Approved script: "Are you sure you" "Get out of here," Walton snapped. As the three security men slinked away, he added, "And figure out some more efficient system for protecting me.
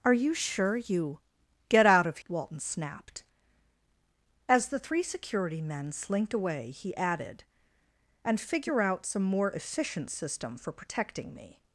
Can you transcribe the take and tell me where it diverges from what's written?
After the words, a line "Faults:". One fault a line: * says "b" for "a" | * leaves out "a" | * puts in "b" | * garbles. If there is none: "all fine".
"Are you sure you" "Get out of," Walton snapped. As the three security men slinked away, he added, "And figure out some more efficient system for protecting me.
Faults:
* leaves out "here"